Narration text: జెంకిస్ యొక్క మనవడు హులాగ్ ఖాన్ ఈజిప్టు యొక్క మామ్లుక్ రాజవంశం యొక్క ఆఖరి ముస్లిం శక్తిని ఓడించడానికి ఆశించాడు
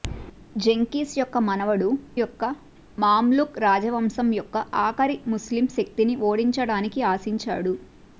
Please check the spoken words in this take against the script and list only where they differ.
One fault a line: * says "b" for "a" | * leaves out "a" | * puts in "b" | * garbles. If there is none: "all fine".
* leaves out "హులాగ్ ఖాన్ ఈజిప్టు"